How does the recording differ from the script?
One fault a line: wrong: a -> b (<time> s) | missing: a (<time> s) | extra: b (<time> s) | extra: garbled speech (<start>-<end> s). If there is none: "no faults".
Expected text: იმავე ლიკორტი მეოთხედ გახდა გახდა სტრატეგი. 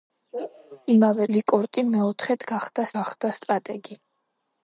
no faults